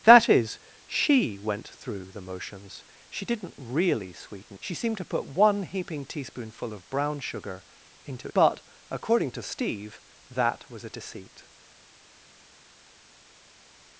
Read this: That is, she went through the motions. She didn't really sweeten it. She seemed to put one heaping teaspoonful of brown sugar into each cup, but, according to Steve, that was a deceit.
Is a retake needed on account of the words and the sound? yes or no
yes